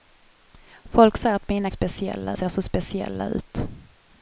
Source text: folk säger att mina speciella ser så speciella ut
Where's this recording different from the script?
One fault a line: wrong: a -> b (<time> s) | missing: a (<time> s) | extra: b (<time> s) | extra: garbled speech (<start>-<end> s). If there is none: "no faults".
no faults